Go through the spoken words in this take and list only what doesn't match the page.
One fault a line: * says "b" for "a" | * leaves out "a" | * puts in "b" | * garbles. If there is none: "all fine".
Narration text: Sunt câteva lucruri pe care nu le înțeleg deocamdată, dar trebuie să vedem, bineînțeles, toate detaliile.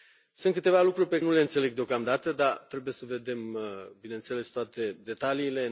* leaves out "care"